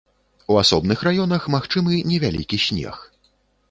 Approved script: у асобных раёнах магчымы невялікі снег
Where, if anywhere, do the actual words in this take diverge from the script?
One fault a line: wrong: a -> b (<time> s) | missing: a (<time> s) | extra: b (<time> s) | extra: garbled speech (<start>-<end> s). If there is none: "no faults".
no faults